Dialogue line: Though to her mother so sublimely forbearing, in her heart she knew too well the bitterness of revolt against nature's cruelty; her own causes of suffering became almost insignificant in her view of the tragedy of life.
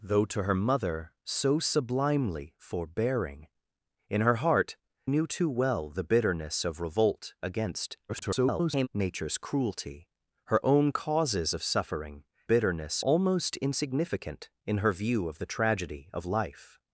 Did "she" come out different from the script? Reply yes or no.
yes